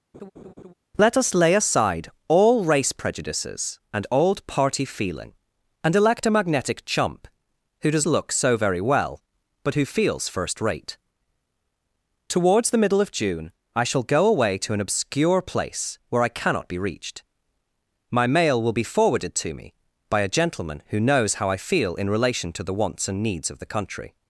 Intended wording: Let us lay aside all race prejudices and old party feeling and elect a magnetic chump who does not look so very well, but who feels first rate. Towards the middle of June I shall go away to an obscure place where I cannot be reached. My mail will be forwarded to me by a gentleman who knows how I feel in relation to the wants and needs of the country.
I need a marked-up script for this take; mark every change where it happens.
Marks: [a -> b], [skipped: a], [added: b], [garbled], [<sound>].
[laugh] Let us lay aside all race prejudices and old party feeling and elect a magnetic chump who does [skipped: not] look so very well, but who feels first rate. Towards the middle of June I shall go away to an obscure place where I cannot be reached. My mail will be forwarded to me by a gentleman who knows how I feel in relation to the wants and needs of the country.